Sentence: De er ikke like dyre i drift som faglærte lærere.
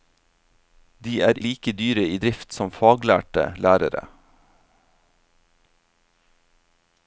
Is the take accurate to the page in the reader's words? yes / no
no